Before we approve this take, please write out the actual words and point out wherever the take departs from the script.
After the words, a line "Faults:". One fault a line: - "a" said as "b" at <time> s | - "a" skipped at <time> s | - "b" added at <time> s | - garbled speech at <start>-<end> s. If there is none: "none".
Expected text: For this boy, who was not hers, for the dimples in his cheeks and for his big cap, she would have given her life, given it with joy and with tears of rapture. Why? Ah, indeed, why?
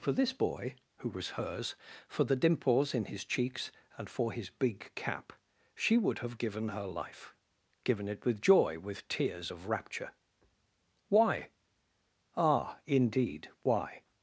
For this boy, who was hers, for the dimples in his cheeks and for his big cap, she would have given her life, given it with joy with tears of rapture. Why? Ah, indeed, why?
Faults:
- "not" skipped at 1.4 s
- "and" skipped at 8.8 s